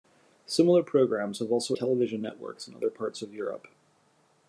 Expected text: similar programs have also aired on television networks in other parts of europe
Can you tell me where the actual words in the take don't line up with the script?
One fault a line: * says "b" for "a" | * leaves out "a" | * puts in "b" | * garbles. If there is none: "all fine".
* leaves out "aired on"